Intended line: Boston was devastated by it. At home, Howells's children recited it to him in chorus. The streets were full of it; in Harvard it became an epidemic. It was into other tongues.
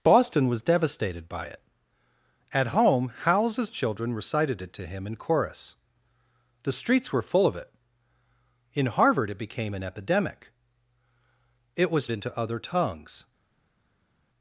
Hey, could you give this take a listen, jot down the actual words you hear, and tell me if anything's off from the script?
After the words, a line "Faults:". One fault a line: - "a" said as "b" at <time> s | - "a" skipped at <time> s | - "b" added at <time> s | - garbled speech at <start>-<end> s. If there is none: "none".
Boston was devastated by it. At home, Howells's children recited it to him in chorus. The streets were full of it; in Harvard it became an epidemic. It was into other tongues.
Faults:
none